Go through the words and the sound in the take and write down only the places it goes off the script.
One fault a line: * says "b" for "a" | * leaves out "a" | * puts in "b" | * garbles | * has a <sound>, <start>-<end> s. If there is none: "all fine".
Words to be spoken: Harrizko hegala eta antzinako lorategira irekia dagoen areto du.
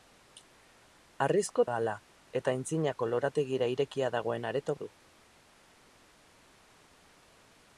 all fine